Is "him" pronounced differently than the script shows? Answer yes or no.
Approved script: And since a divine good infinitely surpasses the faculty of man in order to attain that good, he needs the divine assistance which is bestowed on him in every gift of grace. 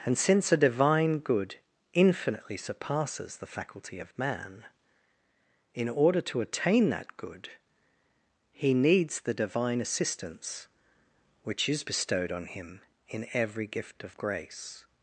no